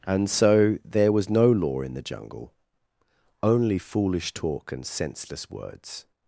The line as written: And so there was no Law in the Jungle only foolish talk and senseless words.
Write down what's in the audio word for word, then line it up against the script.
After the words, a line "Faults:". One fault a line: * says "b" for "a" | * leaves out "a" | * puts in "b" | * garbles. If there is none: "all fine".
And so there was no Law in the Jungle only foolish talk and senseless words.
Faults:
all fine